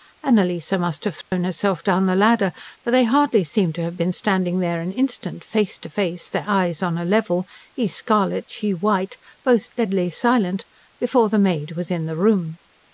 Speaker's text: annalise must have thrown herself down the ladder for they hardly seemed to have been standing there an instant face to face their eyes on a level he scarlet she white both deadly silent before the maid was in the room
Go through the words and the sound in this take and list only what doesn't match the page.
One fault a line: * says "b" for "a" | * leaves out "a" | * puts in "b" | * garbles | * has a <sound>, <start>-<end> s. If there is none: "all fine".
* has a dropout, 1.2-1.3 s